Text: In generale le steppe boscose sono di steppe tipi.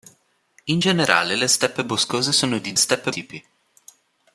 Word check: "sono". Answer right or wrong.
right